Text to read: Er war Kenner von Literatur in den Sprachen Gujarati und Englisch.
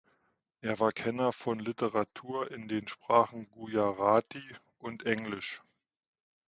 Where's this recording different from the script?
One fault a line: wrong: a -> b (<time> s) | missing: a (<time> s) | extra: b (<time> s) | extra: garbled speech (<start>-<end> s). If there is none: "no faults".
no faults